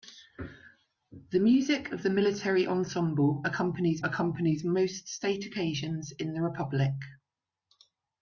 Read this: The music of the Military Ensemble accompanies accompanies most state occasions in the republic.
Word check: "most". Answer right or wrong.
right